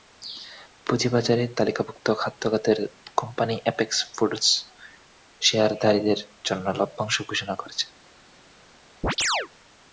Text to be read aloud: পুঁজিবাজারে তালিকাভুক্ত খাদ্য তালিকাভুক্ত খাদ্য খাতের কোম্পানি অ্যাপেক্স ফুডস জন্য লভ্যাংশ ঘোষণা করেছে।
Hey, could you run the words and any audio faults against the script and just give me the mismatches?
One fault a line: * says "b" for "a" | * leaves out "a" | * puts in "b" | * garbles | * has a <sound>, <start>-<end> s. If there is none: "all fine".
* leaves out "তালিকাভুক্ত খাদ্য"
* puts in "শেয়ারধারীদের"
* has a chirp, 9.0-9.5 s